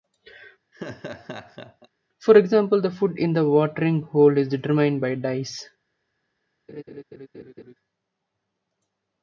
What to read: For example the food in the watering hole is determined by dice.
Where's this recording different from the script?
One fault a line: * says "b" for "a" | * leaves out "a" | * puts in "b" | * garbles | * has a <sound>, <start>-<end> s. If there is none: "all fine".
* has a laugh, 0.7-1.9 s
* has a laugh, 6.7-7.7 s